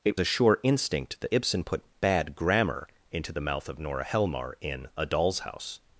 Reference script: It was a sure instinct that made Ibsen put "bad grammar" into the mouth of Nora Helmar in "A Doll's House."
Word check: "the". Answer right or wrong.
right